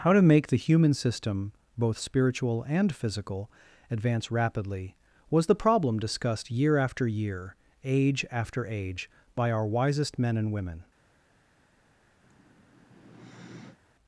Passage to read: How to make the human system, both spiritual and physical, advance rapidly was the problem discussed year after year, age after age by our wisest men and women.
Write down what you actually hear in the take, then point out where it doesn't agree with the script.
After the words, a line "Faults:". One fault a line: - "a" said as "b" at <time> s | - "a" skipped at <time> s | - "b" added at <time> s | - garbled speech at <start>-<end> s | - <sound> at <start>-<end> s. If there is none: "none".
How to make the human system, both spiritual and physical, advance rapidly was the problem discussed year after year, age after age by our wisest men and women.
Faults:
- sigh at 12.2-13.8 s